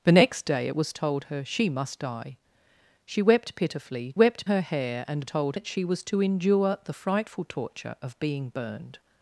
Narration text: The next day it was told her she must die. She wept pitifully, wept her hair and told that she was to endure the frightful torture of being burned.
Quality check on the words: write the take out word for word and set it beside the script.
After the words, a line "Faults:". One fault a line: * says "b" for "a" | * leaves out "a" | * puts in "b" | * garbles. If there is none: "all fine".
The next day it was told her she must die. She wept pitifully, wept her hair and told that she was to endure the frightful torture of being burned.
Faults:
all fine